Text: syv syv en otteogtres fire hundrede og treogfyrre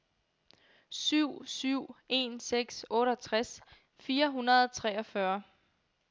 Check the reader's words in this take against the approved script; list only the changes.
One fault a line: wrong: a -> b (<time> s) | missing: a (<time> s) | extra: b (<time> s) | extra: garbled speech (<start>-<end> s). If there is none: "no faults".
extra: seks (2.4 s)